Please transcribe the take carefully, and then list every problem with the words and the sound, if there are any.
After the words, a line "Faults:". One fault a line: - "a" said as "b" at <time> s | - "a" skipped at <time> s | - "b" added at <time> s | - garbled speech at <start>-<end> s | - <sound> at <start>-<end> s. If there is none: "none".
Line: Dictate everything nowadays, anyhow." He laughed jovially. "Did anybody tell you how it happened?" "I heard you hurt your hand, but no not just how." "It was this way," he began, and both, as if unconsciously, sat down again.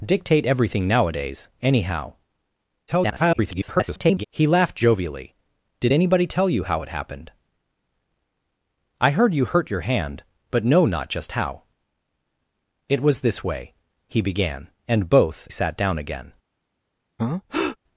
Dictate everything nowadays, anyhow." [garbled] He laughed jovially. "Did anybody tell you how it happened?" "I heard you hurt your hand, but no not just how." "It was this way," he began, and both, sat down again.
Faults:
- garbled speech at 2.9-4.2 s
- "as if unconsciously" skipped at 15.5 s
- breath at 17.2-17.8 s